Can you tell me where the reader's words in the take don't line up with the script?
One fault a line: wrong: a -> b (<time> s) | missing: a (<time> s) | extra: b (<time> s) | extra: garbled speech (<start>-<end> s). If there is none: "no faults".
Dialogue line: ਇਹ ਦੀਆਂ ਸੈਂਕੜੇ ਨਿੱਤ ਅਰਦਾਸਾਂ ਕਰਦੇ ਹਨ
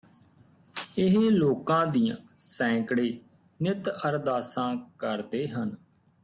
extra: ਲੋਕਾਂ (1.3 s)